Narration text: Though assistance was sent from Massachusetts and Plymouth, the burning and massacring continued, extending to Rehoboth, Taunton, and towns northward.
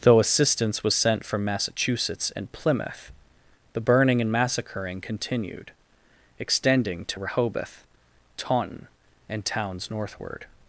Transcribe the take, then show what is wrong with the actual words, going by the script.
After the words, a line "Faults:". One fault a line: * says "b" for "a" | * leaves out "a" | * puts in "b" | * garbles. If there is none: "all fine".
Though assistance was sent from Massachusetts and Plymouth, the burning and massacring continued, extending to Rehoboth, Taunton, and towns northward.
Faults:
all fine